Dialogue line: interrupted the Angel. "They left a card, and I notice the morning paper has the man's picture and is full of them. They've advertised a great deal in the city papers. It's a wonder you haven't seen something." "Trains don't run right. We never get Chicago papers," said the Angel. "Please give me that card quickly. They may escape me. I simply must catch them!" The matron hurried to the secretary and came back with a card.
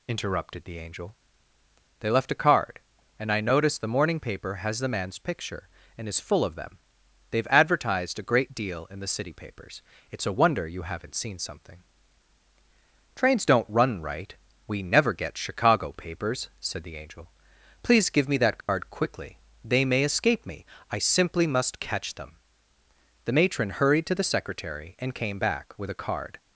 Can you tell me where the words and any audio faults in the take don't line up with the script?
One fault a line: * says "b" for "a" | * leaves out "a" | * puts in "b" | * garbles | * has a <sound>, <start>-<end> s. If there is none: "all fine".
* has a dropout, 18.6-18.7 s